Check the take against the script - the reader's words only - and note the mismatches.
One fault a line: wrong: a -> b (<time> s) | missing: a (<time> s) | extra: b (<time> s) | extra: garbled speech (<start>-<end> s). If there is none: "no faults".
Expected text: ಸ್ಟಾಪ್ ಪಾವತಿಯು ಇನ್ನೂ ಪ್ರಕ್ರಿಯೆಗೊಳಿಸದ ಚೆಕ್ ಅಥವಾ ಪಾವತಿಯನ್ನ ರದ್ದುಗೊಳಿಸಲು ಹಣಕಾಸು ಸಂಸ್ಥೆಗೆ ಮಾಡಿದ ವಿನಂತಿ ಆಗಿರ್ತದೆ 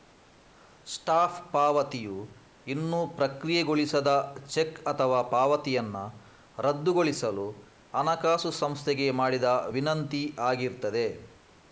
no faults